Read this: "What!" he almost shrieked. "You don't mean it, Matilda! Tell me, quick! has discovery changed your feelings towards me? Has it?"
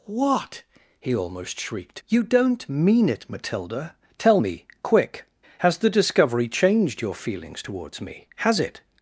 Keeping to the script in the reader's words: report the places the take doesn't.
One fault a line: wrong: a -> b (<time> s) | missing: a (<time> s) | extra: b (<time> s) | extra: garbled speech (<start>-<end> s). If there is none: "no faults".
extra: the (5.8 s)